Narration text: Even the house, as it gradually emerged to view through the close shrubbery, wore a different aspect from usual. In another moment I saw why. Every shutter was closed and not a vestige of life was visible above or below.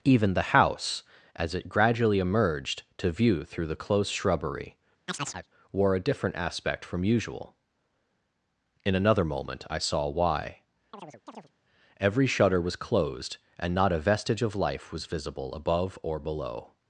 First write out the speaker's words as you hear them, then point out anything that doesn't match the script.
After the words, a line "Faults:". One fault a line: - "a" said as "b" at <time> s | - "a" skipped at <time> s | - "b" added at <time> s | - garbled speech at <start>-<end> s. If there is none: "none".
Even the house, as it gradually emerged to view through the close shrubbery, wore a different aspect from usual. In another moment I saw why. Every shutter was closed and not a vestige of life was visible above or below.
Faults:
none